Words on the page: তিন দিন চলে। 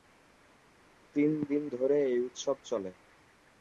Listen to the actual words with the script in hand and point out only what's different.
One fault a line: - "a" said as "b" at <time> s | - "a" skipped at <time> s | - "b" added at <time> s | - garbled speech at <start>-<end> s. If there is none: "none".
- "ধরে এই উৎসব" added at 1.7 s